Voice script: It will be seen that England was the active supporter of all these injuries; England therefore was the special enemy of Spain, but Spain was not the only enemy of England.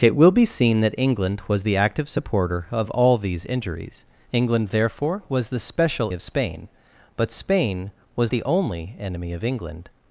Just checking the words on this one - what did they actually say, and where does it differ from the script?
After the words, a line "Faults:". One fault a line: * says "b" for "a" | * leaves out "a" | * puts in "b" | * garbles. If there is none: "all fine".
It will be seen that England was the active supporter of all these injuries; England therefore was the special of Spain, but Spain was the only enemy of England.
Faults:
* leaves out "enemy"
* leaves out "not"